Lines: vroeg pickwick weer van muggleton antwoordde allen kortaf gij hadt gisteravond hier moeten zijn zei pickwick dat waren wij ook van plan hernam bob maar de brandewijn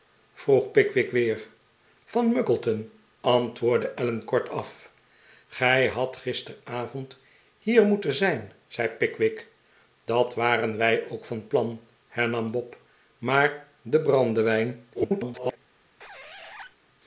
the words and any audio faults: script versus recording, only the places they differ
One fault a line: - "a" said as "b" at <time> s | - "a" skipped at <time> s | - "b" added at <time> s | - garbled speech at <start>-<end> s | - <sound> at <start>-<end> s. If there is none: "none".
- garbled speech at 14.9-15.6 s
- squeak at 16.0-16.8 s